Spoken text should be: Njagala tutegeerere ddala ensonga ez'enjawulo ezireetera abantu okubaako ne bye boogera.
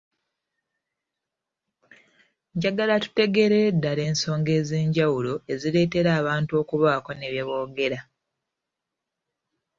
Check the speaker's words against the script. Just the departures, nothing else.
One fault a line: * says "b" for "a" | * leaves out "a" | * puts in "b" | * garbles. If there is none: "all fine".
all fine